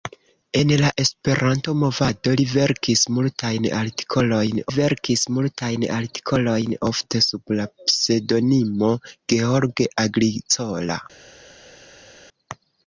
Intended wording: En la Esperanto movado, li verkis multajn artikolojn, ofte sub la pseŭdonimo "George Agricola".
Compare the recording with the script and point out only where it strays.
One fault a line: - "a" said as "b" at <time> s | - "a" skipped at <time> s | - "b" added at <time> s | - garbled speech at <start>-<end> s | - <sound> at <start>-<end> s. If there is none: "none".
- "verkis multajn artikolojn" added at 4.8 s